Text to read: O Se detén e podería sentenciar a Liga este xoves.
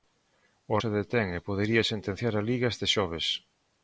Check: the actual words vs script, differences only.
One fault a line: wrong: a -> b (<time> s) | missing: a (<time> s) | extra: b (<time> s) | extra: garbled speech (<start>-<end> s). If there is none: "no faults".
no faults